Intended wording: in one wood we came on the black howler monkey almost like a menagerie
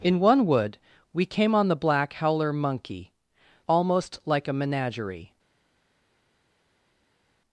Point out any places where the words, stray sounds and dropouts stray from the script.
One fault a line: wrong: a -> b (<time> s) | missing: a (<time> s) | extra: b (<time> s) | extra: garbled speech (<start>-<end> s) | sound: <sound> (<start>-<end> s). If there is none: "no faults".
no faults